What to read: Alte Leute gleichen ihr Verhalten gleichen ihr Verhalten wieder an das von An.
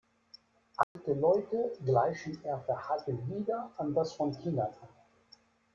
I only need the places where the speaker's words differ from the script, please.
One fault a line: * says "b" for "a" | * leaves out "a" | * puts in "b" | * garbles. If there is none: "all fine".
* leaves out "gleichen ihr Verhalten"
* puts in "Kindern"